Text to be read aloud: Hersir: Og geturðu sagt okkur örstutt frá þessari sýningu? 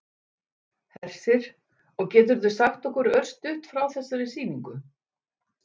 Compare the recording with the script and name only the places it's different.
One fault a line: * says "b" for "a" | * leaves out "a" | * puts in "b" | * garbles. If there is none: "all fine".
all fine